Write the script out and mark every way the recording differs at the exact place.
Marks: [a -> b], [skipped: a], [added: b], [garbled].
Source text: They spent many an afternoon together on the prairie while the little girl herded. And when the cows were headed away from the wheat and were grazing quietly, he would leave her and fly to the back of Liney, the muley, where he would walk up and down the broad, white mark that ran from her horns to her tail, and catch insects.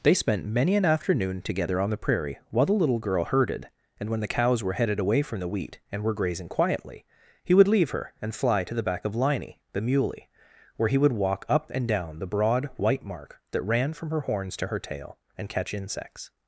They spent many an afternoon together on the prairie while the little girl herded. And when the cows were headed away from the wheat and were grazing quietly, he would leave her and fly to the back of Liney, the muley, where he would walk up and down the broad, white mark that ran from her horns to her tail, and catch insects.